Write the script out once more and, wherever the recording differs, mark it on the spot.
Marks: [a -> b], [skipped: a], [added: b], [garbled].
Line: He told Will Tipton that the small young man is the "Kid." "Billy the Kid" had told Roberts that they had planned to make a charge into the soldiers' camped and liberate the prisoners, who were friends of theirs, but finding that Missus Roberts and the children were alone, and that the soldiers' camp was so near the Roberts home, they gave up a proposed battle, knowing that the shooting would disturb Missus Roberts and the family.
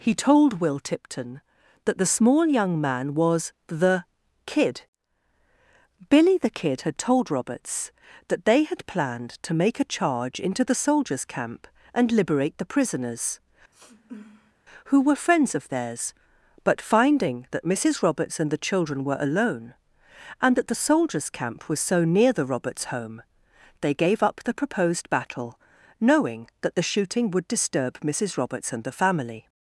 He told Will Tipton that the small young man [is -> was] the "Kid." "Billy the Kid" had told Roberts that they had planned to make a charge into the soldiers' [camped -> camp] and liberate the prisoners, who were friends of theirs, but finding that Missus Roberts and the children were alone, and that the soldiers' camp was so near the Roberts home, they gave up [a -> the] proposed battle, knowing that the shooting would disturb Missus Roberts and the family.